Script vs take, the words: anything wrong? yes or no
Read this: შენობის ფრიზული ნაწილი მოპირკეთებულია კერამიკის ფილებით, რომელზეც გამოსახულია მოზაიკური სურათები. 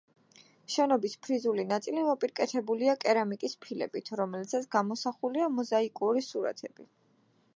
no